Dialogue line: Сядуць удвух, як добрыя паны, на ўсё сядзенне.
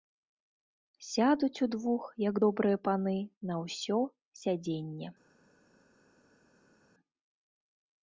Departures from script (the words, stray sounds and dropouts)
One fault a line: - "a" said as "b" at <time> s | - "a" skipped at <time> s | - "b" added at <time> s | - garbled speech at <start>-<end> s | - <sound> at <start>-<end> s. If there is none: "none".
none